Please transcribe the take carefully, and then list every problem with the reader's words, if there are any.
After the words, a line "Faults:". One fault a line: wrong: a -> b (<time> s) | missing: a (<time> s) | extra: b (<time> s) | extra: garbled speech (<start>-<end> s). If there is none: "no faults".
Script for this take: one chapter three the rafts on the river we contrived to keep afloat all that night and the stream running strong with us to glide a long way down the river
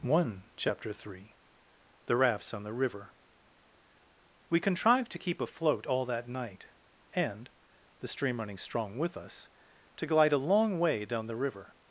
one chapter three the rafts on the river we contrived to keep afloat all that night and the stream running strong with us to glide a long way down the river
Faults:
no faults